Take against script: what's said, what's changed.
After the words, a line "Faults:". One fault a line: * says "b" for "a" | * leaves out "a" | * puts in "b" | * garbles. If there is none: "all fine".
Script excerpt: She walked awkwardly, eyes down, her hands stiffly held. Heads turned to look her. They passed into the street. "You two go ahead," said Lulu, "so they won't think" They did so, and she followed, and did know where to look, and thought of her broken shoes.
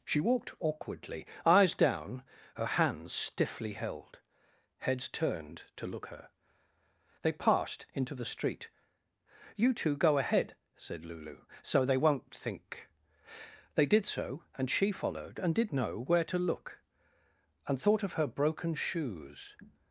She walked awkwardly, eyes down, her hands stiffly held. Heads turned to look her. They passed into the street. "You two go ahead," said Lulu, "so they won't think" They did so, and she followed, and did know where to look, and thought of her broken shoes.
Faults:
all fine